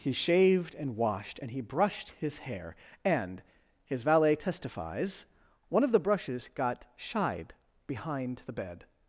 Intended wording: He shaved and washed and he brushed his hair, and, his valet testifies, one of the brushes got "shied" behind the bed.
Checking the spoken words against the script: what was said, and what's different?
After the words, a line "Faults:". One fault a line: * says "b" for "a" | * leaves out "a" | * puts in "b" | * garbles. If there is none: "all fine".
He shaved and washed and he brushed his hair, and, his valet testifies, one of the brushes got "shied" behind the bed.
Faults:
all fine